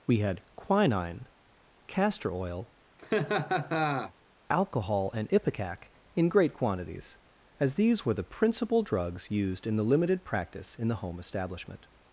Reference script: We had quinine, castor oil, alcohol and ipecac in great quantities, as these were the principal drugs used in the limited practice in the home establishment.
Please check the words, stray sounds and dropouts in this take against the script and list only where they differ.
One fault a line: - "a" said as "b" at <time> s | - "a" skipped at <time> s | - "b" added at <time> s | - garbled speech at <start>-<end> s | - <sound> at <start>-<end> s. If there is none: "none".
- laugh at 3.0-4.1 s